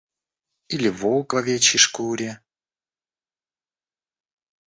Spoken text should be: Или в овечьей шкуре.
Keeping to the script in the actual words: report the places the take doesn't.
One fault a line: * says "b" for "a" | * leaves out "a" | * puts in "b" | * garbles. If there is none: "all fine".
* puts in "волк"